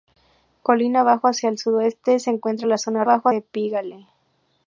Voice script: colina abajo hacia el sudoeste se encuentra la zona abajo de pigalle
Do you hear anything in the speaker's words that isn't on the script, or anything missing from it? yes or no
no